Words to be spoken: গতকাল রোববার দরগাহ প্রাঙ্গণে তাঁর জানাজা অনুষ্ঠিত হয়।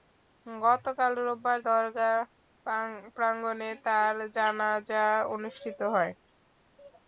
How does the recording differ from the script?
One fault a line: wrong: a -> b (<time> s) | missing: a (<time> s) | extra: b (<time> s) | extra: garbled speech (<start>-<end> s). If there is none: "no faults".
no faults